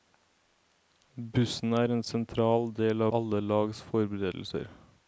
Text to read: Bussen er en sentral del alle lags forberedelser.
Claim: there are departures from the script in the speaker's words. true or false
false